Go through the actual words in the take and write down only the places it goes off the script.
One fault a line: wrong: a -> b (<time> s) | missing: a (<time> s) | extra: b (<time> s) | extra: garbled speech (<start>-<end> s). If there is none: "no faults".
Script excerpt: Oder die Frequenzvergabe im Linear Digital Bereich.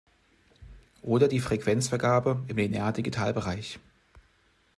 no faults